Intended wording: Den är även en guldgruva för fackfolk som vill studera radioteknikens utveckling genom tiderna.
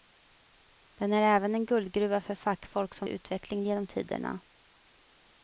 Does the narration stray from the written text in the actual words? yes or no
yes